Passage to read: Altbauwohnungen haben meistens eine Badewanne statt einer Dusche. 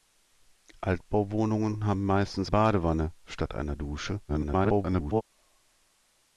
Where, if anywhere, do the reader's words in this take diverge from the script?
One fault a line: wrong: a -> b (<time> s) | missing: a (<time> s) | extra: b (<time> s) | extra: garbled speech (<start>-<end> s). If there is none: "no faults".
missing: eine (2.5 s)
extra: garbled speech (4.3-5.2 s)